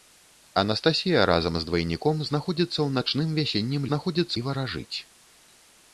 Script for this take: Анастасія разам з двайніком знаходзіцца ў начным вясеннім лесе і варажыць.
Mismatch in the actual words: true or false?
true